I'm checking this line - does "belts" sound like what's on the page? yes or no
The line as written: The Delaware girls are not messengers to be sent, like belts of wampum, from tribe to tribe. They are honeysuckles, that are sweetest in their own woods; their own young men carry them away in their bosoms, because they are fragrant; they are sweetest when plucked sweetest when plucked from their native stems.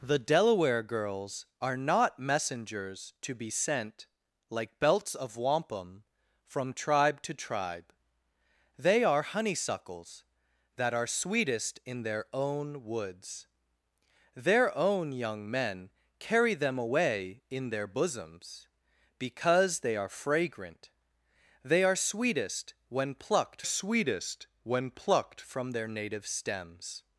yes